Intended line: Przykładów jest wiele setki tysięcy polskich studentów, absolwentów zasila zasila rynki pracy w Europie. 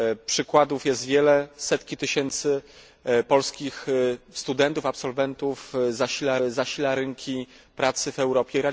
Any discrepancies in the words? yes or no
no